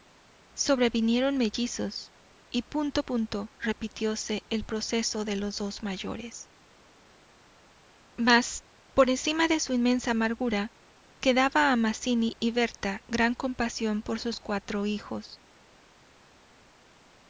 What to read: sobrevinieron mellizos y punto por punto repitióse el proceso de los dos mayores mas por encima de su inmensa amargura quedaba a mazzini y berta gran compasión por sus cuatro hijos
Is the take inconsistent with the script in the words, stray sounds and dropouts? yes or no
yes